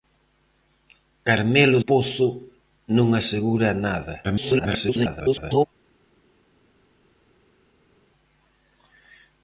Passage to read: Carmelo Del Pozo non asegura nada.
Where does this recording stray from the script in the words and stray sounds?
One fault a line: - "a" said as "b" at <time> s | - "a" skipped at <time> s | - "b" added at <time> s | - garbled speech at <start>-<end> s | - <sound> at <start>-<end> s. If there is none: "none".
- "Del" skipped at 1.8 s
- garbled speech at 4.2-5.7 s